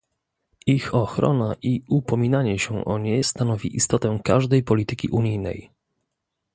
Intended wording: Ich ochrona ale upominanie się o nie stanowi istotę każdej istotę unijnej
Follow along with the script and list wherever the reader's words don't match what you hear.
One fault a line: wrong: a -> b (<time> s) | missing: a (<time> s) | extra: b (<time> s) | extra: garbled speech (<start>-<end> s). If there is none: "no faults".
wrong: ale -> i (1.6 s)
wrong: istotę -> polityki (4.6 s)